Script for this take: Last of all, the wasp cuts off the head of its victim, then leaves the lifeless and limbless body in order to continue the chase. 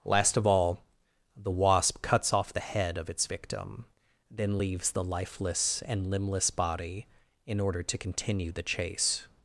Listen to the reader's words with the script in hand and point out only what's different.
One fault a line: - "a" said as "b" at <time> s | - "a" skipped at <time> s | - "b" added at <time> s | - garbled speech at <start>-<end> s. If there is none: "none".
none